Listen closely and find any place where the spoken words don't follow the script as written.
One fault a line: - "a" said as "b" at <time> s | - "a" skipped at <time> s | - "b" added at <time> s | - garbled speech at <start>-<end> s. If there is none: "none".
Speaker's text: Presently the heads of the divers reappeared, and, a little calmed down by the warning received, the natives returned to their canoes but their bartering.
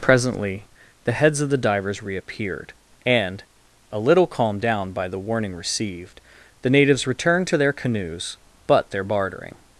none